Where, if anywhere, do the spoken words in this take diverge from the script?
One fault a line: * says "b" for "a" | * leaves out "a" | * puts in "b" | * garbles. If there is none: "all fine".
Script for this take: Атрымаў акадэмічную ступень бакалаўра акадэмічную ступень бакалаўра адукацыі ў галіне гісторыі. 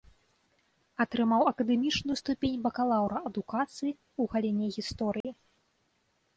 * leaves out "акадэмічную ступень бакалаўра"